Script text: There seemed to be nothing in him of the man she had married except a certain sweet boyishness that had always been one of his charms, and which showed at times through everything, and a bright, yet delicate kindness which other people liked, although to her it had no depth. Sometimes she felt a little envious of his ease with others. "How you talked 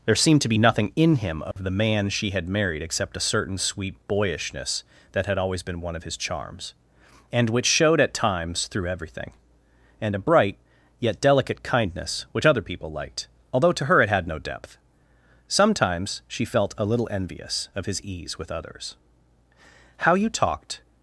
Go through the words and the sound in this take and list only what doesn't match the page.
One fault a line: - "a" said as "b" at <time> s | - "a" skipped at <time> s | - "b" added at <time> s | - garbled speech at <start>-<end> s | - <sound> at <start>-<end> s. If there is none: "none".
- dropout at 1.5-1.6 s